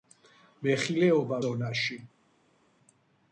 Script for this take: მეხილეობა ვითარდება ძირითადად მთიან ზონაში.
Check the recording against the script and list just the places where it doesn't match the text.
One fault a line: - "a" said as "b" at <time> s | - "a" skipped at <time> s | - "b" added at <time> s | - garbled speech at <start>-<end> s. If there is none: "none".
- "ვითარდება ძირითადად მთიან" skipped at 1.4 s